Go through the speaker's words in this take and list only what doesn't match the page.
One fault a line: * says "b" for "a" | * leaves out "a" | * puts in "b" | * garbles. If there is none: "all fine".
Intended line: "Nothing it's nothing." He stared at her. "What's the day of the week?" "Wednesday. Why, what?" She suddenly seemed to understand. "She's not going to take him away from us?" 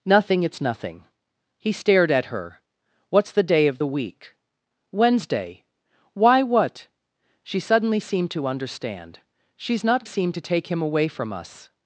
* says "seemed" for "going"